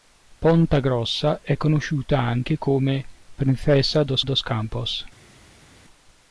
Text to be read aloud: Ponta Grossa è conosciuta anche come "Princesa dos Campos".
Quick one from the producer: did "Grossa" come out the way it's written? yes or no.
yes